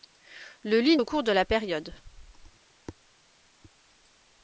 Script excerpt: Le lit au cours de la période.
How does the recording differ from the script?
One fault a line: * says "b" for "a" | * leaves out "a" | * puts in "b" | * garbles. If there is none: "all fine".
all fine